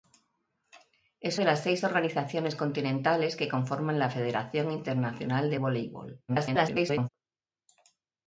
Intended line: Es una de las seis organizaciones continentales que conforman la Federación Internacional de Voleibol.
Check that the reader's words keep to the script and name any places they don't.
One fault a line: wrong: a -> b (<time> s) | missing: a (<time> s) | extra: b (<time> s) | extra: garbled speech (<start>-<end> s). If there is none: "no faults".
missing: una (1.4 s)
extra: garbled speech (6.3-7.1 s)